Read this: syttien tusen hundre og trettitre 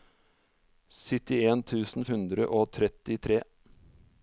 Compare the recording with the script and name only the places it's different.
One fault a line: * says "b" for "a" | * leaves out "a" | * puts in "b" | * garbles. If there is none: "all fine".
all fine